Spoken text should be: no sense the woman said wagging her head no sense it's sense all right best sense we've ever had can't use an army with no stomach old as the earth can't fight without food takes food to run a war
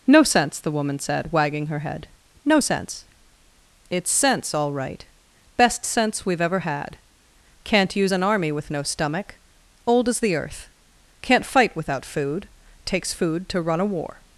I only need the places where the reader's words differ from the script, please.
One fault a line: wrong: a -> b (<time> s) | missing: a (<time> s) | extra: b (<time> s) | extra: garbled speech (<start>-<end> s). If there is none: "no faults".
no faults